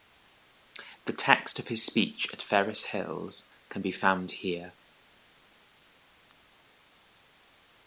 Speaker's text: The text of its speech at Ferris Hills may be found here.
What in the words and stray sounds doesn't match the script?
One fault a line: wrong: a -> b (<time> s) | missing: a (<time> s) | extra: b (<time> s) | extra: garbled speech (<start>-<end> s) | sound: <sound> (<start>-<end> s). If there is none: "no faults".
wrong: its -> his (1.7 s)
wrong: may -> can (3.7 s)